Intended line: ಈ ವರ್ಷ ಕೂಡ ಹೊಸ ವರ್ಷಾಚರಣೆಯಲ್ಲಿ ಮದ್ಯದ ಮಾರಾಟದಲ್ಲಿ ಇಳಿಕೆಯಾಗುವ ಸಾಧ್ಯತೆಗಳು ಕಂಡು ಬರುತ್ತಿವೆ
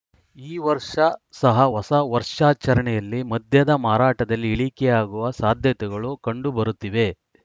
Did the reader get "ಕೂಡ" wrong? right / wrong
wrong